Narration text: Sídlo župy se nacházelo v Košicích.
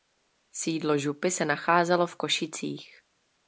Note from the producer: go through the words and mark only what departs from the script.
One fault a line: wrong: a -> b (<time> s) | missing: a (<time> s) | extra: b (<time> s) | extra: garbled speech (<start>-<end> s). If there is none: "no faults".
no faults